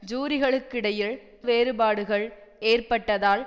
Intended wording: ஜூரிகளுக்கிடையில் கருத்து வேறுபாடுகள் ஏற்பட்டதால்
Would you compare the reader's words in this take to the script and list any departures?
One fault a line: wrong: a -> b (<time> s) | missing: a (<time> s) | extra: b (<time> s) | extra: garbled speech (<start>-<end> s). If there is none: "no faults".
missing: கருத்து (1.1 s)